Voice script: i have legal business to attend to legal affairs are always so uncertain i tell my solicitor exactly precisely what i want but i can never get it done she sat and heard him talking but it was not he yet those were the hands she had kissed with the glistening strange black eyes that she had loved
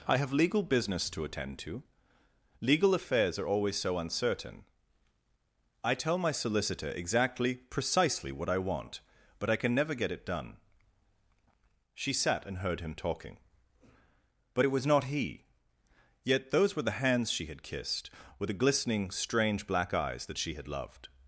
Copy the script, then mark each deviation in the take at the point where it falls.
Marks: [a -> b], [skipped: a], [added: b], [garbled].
i have legal business to attend to legal affairs are always so uncertain i tell my solicitor exactly precisely what i want but i can never get it done she sat and heard him talking but it was not he yet those were the hands she had kissed with the glistening strange black eyes that she had loved